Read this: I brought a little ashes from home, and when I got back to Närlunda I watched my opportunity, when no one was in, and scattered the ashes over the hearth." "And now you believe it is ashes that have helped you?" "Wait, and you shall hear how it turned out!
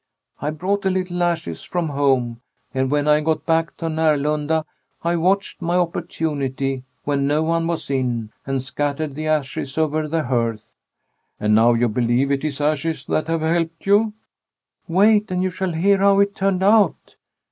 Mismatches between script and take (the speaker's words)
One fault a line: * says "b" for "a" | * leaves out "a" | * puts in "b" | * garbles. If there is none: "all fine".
all fine